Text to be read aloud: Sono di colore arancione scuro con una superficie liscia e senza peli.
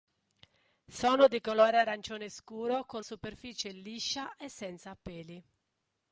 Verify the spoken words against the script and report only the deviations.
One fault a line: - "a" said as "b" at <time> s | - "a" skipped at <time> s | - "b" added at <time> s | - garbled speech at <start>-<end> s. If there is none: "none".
- "una" skipped at 3.0 s